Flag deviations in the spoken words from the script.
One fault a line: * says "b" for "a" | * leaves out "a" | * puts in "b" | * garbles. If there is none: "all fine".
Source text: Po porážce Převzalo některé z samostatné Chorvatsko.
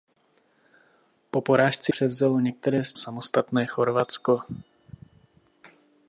all fine